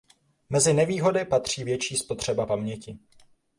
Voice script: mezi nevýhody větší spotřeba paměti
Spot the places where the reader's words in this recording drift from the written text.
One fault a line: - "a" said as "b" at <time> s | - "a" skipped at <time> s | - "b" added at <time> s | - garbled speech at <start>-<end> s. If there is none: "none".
- "patří" added at 1.2 s